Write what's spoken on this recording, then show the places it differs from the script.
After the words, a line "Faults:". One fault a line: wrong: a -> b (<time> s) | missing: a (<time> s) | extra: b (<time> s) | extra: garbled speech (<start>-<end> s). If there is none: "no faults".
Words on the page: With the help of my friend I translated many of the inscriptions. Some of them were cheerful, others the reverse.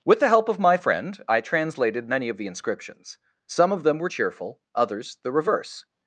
With the help of my friend I translated many of the inscriptions. Some of them were cheerful, others the reverse.
Faults:
no faults